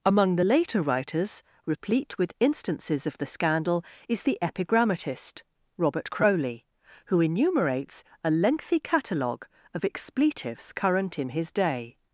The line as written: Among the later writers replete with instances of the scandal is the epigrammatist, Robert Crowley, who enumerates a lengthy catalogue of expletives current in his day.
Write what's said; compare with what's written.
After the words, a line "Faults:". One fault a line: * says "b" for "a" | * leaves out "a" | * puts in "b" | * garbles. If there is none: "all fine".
Among the later writers replete with instances of the scandal is the epigrammatist, Robert Crowley, who enumerates a lengthy catalogue of expletives current in his day.
Faults:
all fine